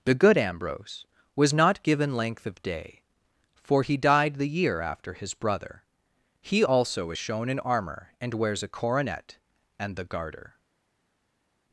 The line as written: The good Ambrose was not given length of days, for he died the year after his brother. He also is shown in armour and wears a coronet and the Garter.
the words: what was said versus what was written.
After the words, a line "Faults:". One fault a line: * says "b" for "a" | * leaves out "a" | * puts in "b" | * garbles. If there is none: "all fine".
The good Ambrose was not given length of day, for he died the year after his brother. He also is shown in armour and wears a coronet and the Garter.
Faults:
* says "day" for "days"